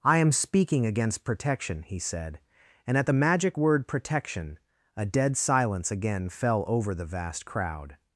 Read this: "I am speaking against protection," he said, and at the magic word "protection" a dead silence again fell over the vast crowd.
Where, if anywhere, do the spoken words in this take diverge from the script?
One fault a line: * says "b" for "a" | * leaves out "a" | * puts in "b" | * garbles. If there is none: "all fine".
all fine